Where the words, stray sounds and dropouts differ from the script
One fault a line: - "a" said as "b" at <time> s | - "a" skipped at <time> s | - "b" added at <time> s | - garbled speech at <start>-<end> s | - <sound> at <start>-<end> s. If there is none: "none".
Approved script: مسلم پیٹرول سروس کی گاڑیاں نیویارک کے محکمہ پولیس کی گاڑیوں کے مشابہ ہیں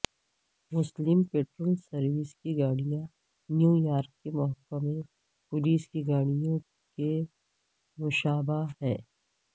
none